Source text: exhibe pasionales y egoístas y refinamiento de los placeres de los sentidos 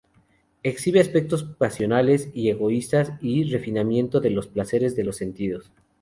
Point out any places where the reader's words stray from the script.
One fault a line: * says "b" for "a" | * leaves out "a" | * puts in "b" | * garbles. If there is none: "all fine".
* puts in "aspectos"